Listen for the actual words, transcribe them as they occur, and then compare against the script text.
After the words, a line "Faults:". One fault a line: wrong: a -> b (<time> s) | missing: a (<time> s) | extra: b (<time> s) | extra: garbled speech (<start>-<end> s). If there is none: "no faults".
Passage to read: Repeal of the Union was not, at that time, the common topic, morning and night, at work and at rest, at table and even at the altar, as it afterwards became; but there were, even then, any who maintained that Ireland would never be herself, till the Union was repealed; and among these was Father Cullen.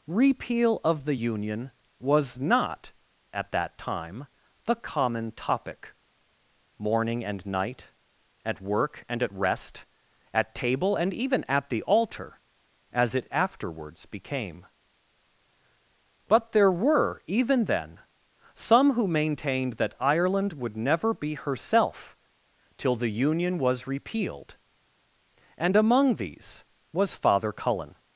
Repeal of the Union was not, at that time, the common topic, morning and night, at work and at rest, at table and even at the altar, as it afterwards became; but there were, even then, some who maintained that Ireland would never be herself, till the Union was repealed; and among these was Father Cullen.
Faults:
wrong: any -> some (18.5 s)